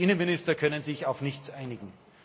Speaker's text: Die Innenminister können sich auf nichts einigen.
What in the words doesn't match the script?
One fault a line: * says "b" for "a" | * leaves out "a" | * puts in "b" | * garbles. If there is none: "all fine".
all fine